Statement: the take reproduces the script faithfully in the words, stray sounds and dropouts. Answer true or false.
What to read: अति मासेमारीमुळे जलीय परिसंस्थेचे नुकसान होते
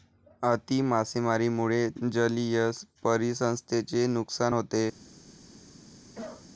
false